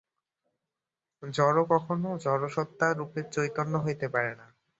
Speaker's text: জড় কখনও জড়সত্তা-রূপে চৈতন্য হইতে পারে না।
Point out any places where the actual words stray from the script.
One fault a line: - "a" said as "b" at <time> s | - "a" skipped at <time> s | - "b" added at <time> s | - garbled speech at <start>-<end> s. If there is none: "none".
none